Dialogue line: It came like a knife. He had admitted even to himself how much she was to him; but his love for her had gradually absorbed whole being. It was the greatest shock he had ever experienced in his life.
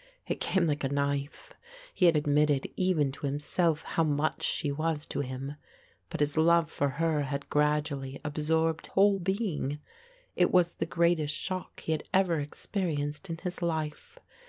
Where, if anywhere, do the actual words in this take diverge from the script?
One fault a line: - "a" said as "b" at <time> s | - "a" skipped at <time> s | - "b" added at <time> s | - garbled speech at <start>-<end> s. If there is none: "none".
none